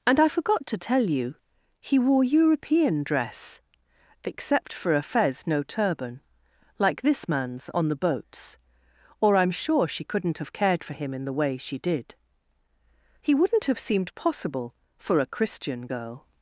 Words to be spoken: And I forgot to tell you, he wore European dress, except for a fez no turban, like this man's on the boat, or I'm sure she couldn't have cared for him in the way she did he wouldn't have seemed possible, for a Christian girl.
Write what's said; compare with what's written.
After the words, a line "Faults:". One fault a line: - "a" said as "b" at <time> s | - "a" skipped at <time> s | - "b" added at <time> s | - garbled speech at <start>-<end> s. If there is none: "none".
And I forgot to tell you, he wore European dress, except for a fez no turban, like this man's on the boats, or I'm sure she couldn't have cared for him in the way she did he wouldn't have seemed possible, for a Christian girl.
Faults:
- "boat" said as "boats" at 8.0 s